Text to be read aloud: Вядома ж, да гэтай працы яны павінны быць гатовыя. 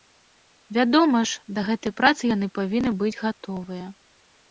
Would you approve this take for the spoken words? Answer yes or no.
yes